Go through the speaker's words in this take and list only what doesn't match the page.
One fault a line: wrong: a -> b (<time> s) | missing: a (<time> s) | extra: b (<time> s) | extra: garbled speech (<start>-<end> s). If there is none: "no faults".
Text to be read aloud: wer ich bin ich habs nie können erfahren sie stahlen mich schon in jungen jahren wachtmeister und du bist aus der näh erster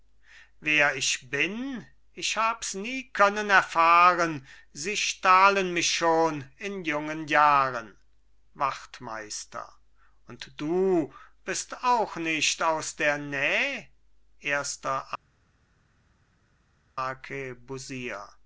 extra: auch nicht (11.8 s)